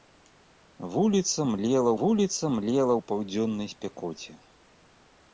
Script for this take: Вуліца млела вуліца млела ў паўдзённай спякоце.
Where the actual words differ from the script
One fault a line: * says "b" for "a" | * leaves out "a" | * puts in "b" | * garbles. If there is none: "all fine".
all fine